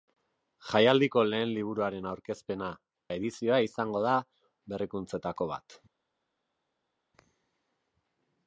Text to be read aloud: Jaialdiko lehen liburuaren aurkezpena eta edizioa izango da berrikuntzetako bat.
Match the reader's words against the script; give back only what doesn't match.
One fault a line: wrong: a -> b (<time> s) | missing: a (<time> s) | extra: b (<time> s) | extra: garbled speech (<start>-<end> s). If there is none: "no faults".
missing: eta (2.7 s)